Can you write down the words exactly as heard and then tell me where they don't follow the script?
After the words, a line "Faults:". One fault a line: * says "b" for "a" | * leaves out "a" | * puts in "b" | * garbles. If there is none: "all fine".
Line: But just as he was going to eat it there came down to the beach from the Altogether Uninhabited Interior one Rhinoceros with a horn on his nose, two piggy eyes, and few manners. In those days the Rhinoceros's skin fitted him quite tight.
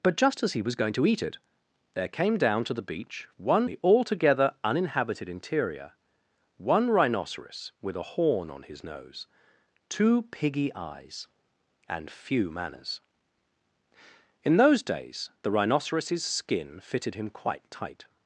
But just as he was going to eat it there came down to the beach one the Altogether Uninhabited Interior one Rhinoceros with a horn on his nose, two piggy eyes, and few manners. In those days the Rhinoceros's skin fitted him quite tight.
Faults:
* says "one" for "from"